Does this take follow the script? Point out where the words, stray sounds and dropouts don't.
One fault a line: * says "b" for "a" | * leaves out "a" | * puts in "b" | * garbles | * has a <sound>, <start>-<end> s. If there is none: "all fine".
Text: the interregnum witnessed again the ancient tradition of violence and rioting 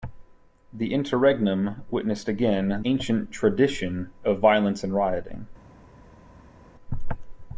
* leaves out "the"